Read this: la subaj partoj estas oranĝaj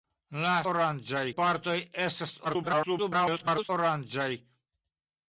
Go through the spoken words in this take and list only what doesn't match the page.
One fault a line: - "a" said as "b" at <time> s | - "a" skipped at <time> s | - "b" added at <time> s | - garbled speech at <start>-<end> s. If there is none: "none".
- "subaj" said as "oranĝaj" at 0.7 s
- garbled speech at 2.4-3.7 s